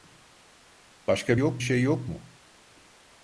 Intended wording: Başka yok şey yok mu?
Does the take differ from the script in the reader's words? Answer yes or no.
no